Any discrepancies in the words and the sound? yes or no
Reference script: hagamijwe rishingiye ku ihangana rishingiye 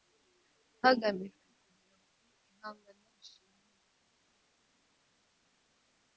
yes